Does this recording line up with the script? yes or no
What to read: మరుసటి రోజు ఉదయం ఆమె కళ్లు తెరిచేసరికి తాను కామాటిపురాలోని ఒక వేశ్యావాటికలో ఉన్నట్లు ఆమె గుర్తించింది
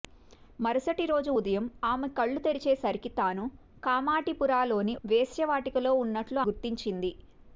no